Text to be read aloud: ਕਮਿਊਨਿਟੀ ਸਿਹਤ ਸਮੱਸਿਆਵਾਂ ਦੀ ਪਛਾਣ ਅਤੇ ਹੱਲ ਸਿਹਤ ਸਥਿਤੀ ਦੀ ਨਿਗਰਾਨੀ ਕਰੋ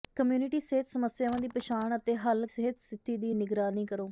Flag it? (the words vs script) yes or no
no